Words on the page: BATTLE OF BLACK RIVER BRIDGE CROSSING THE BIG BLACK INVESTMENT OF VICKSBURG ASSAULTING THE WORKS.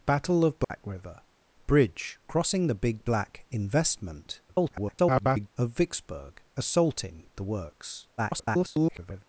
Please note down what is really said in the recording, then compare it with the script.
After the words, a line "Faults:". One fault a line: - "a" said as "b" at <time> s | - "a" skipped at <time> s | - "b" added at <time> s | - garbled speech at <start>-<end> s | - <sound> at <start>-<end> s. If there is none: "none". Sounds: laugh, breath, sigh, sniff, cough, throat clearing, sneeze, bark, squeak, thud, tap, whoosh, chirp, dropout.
BATTLE OF BLACK RIVER BRIDGE CROSSING THE BIG BLACK INVESTMENT [garbled] OF VICKSBURG ASSAULTING THE WORKS. [garbled]
Faults:
- dropout at 0.6-0.7 s
- garbled speech at 4.5-5.5 s
- garbled speech at 8.2-9.2 s